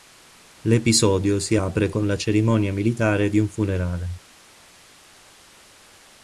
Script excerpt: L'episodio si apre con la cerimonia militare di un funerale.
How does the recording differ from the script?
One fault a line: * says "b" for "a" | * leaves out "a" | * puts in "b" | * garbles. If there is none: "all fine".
all fine